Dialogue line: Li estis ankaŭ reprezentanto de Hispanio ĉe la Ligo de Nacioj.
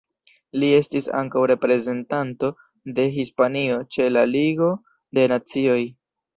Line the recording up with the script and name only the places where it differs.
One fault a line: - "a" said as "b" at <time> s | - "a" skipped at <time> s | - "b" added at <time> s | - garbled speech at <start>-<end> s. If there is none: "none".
none